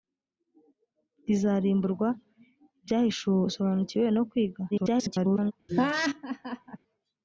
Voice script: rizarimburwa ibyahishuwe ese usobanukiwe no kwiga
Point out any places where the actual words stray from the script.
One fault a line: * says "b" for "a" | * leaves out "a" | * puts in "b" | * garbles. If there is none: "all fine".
* leaves out "ese"
* garbles